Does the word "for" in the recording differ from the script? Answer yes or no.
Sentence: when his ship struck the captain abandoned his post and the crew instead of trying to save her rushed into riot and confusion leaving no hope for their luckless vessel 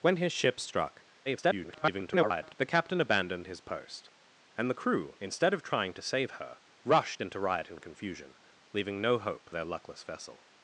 yes